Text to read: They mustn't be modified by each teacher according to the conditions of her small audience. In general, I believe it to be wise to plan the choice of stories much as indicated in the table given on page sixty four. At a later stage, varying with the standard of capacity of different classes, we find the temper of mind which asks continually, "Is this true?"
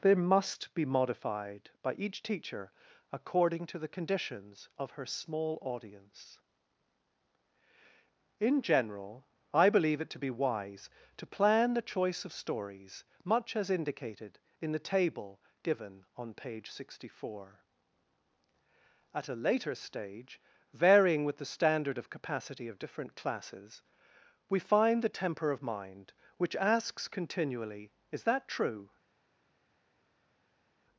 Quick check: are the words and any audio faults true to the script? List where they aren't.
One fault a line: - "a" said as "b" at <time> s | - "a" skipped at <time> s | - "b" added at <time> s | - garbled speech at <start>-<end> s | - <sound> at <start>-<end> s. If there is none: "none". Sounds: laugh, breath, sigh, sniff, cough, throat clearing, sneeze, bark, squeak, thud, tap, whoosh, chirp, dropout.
- "mustn't" said as "must" at 0.1 s
- "this" said as "that" at 28.2 s